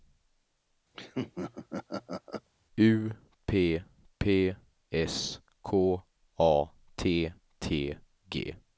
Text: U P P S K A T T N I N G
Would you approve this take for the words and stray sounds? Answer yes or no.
no